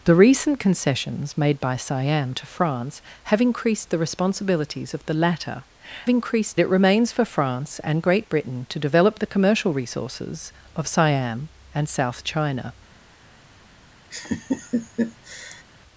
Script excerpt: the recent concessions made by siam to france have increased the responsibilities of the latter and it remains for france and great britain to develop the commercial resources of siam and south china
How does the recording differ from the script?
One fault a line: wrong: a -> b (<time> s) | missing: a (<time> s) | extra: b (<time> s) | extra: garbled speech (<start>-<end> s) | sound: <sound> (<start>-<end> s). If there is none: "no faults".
wrong: and -> increased (6.1 s)
sound: laugh (14.1-15.6 s)